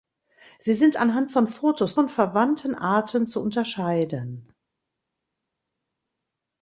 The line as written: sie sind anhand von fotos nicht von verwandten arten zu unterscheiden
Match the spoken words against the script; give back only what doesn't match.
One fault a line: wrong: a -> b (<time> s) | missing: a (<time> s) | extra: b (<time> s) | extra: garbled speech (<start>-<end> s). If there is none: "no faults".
missing: nicht (2.0 s)